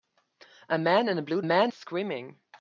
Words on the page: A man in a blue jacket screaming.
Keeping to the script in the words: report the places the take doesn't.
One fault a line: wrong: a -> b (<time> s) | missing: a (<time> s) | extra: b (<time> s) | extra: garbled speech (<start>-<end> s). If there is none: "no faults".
wrong: jacket -> man (1.4 s)